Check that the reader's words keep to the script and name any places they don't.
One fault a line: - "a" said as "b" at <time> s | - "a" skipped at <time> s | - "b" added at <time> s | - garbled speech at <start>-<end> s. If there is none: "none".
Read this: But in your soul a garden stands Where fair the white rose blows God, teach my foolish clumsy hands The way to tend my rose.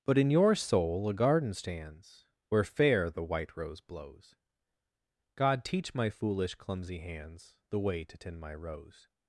none